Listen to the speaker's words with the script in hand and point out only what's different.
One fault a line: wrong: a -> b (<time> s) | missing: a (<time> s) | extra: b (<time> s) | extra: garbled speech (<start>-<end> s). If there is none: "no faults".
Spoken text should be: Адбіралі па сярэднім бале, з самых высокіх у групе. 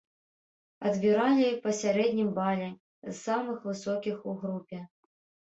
no faults